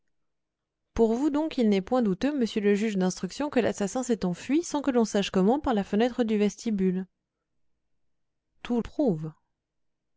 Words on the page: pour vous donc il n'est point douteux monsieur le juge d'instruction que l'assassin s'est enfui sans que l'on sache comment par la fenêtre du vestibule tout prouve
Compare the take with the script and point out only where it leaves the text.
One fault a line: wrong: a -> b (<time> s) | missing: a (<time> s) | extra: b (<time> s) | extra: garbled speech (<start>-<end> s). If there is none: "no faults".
no faults